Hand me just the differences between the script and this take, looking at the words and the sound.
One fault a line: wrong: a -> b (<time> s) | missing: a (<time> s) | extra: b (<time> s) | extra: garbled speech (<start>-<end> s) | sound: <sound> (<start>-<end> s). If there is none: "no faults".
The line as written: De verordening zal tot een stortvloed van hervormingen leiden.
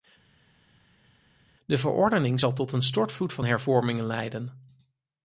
no faults